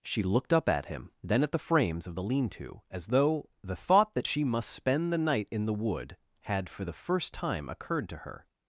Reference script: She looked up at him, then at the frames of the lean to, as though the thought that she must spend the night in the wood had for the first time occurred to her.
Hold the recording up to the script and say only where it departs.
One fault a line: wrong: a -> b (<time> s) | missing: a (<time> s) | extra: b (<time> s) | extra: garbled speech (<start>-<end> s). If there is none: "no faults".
no faults